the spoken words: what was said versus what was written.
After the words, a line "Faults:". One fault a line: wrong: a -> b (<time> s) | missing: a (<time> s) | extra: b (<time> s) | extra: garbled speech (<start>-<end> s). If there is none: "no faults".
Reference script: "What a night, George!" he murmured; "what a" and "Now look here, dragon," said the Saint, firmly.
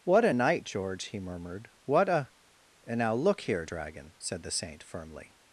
"What a night, George!" he murmured; "what a" and "Now look here, dragon," said the Saint, firmly.
Faults:
no faults